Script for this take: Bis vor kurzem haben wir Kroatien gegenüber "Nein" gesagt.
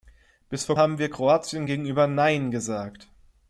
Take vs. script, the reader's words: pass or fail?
fail